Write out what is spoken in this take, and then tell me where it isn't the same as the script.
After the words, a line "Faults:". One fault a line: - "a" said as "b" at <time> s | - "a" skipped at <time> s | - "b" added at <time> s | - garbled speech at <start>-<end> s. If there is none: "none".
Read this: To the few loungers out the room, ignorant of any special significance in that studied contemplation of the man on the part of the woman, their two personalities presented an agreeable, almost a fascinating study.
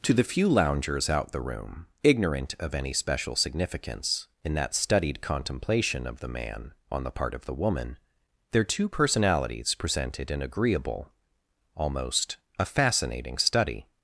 To the few loungers out the room, ignorant of any special significance in that studied contemplation of the man on the part of the woman, their two personalities presented an agreeable, almost a fascinating study.
Faults:
none